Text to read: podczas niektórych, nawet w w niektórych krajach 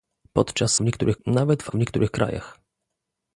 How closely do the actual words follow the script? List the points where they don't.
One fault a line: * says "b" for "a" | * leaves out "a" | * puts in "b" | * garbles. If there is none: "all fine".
all fine